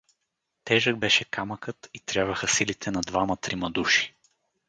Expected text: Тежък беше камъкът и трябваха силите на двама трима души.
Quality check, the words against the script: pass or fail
pass